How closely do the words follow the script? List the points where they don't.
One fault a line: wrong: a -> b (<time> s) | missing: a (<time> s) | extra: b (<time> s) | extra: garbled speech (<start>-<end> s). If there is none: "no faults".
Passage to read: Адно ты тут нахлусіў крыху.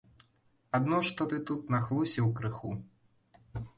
extra: што (1.1 s)